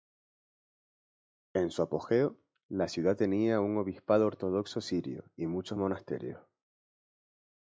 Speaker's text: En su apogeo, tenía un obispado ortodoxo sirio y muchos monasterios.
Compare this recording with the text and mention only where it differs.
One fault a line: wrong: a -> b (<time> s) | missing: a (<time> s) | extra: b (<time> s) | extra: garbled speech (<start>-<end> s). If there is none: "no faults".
extra: la ciudad (2.7 s)